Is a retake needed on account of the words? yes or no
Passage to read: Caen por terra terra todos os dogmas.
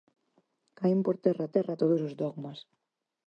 no